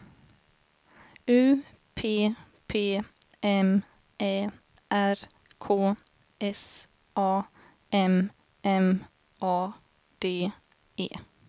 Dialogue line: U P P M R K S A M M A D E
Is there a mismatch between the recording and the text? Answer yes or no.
yes